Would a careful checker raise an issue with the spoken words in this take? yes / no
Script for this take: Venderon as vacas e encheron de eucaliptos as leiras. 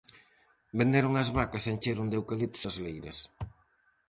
no